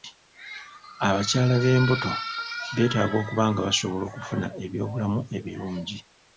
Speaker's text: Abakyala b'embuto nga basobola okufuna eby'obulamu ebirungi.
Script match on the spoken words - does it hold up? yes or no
no